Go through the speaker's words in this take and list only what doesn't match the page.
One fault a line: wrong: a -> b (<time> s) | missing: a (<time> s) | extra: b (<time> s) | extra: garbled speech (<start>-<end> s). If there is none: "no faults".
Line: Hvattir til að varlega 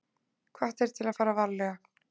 extra: fara (1.2 s)